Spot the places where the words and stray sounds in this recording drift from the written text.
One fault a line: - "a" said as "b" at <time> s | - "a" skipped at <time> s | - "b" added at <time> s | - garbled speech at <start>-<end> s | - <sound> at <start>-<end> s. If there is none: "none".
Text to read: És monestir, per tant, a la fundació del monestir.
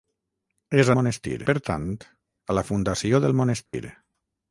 - dropout at 3.7-3.7 s